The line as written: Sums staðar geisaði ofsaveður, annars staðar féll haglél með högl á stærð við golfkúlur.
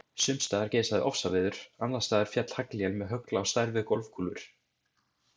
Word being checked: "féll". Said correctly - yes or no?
yes